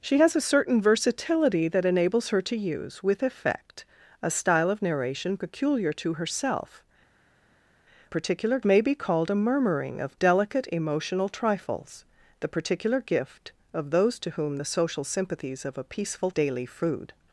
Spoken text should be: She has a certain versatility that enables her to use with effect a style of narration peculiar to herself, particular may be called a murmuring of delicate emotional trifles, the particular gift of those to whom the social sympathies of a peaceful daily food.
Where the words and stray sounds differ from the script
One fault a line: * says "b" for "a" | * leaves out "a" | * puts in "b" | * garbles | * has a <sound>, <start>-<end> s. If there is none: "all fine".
all fine